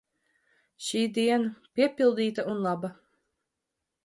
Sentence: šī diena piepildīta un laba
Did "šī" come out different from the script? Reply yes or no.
no